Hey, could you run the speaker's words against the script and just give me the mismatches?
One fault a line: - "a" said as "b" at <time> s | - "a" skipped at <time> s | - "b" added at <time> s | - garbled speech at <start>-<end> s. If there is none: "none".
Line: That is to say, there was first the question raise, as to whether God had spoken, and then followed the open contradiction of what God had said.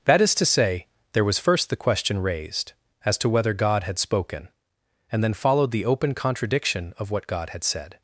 - "raise" said as "raised" at 2.2 s